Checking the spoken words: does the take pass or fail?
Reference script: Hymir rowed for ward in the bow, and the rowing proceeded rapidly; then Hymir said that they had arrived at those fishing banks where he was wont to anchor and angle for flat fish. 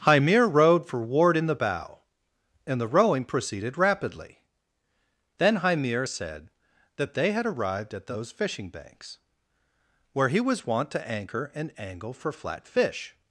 pass